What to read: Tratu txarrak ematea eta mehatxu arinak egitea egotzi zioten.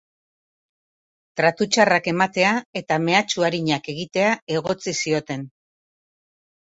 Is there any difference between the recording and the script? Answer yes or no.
no